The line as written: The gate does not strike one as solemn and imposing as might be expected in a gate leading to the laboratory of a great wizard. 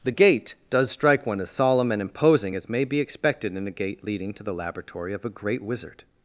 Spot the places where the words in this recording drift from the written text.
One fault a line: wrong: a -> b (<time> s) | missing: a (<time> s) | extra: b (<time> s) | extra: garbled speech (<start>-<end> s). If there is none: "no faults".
missing: not (0.9 s)
wrong: might -> may (2.7 s)